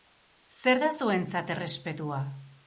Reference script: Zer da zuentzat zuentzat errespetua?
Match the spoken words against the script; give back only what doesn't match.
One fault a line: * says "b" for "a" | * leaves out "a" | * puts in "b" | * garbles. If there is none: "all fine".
* leaves out "zuentzat"